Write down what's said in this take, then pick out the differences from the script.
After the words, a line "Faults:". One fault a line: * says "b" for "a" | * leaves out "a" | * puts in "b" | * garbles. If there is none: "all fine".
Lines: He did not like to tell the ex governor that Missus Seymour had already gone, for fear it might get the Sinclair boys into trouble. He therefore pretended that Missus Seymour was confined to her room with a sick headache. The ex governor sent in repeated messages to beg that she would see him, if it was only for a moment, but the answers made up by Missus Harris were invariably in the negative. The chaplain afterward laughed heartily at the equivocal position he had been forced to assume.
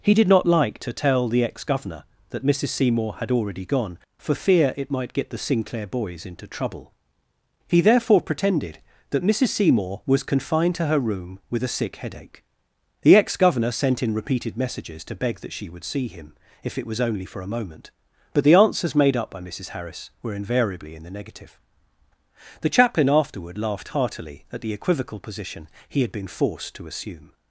He did not like to tell the ex governor that Missus Seymour had already gone, for fear it might get the Sinclair boys into trouble. He therefore pretended that Missus Seymour was confined to her room with a sick headache. The ex governor sent in repeated messages to beg that she would see him, if it was only for a moment, but the answers made up by Missus Harris were invariably in the negative. The chaplain afterward laughed heartily at the equivocal position he had been forced to assume.
Faults:
all fine